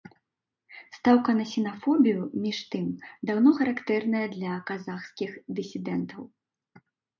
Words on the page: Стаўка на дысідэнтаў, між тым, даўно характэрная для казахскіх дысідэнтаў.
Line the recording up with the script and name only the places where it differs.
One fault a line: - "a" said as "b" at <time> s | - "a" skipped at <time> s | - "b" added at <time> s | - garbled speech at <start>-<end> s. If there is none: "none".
- "дысідэнтаў" said as "сінафобію" at 1.5 s